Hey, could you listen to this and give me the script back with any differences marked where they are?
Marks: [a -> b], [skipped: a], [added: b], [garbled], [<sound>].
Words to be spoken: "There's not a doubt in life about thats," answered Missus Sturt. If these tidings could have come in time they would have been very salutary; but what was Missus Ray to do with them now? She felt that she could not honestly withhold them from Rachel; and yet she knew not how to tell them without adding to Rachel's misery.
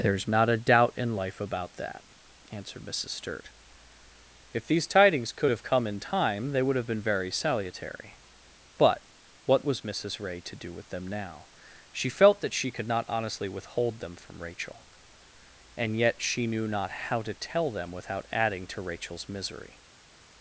"There's not a doubt in life about [thats," -> that] answered Missus Sturt. If these tidings could have come in time they would have been very salutary; but what was Missus Ray to do with them now? She felt that she could not honestly withhold them from Rachel; and yet she knew not how to tell them without adding to Rachel's misery.